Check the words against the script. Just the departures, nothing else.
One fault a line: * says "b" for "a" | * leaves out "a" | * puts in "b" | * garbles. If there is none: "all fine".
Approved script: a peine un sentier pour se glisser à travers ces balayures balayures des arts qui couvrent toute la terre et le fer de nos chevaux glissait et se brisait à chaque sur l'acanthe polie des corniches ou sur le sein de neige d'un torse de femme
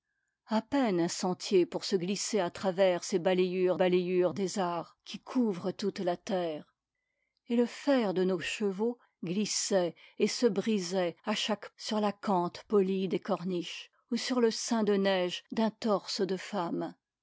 all fine